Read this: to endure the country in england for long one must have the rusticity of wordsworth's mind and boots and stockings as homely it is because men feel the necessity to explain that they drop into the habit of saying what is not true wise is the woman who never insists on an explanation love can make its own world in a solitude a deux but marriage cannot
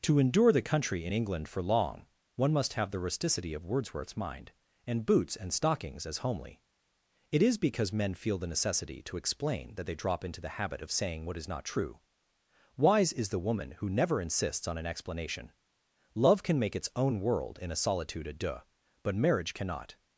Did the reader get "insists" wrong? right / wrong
right